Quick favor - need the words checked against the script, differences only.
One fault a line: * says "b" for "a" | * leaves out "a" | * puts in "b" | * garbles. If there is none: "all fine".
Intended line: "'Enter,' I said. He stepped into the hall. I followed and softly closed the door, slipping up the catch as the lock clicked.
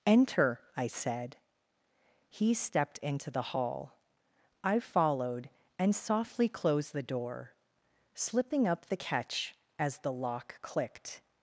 all fine